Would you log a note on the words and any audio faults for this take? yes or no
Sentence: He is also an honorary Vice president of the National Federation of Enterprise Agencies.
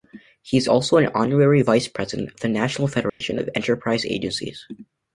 yes